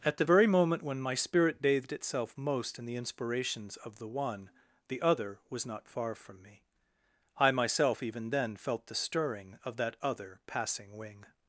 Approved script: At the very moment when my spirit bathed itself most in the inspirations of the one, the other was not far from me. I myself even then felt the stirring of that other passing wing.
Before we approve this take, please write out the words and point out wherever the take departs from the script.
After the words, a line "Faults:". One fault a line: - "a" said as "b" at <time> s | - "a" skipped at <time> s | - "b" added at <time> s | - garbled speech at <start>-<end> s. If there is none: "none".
At the very moment when my spirit bathed itself most in the inspirations of the one, the other was not far from me. I myself even then felt the stirring of that other passing wing.
Faults:
none